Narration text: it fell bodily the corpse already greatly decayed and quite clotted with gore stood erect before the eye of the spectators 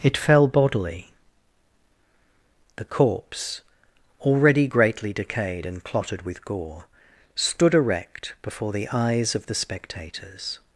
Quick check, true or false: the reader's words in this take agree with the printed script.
false